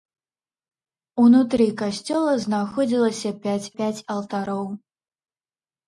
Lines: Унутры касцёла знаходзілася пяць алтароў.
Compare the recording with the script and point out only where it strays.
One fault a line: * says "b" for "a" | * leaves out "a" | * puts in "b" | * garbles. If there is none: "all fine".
* puts in "пяць"